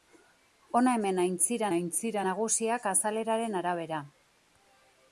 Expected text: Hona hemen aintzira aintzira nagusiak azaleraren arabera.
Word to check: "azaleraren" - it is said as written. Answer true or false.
true